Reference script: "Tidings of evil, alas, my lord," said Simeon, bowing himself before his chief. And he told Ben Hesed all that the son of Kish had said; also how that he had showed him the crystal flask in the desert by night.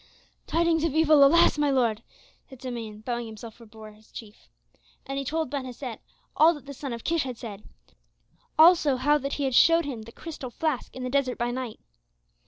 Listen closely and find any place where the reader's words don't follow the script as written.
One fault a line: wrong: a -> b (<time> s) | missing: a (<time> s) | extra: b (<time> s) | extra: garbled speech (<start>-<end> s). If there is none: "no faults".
no faults